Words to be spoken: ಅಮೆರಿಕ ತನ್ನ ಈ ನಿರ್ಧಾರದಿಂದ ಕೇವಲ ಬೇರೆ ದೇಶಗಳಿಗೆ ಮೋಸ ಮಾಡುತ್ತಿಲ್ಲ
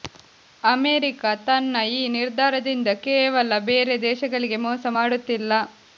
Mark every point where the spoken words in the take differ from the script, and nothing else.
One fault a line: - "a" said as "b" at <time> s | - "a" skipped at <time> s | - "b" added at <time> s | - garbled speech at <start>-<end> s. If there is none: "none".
none